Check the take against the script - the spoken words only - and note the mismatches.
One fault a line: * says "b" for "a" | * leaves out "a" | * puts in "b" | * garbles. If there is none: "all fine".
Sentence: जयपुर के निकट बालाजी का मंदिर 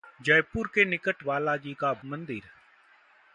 all fine